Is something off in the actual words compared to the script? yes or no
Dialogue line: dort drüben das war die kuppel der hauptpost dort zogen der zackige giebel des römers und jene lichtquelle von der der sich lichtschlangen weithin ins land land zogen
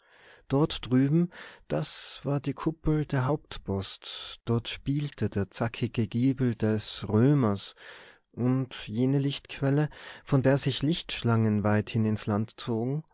yes